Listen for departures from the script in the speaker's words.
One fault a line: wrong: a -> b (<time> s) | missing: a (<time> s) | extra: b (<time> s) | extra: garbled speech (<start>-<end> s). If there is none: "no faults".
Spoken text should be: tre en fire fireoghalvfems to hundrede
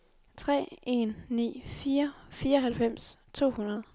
extra: ni (1.3 s)